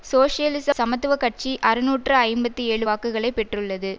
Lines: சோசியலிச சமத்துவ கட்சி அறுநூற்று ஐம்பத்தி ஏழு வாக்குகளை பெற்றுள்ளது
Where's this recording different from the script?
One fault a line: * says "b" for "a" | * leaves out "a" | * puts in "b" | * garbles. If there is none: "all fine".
all fine